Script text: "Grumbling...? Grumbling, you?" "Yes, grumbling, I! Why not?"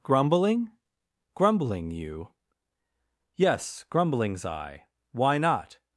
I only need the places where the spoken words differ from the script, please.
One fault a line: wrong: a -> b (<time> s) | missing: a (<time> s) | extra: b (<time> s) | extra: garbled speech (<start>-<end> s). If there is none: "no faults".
wrong: grumbling -> grumblings (3.9 s)